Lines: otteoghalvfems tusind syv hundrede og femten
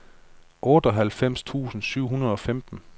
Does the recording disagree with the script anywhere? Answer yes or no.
no